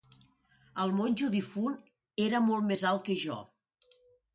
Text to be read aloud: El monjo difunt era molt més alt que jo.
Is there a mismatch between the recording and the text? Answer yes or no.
no